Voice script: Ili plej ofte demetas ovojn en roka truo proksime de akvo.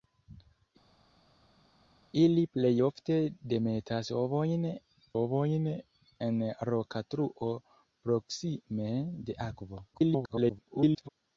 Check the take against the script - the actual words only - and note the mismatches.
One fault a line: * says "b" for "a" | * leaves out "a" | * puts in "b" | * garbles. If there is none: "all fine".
* puts in "ovojn"
* garbles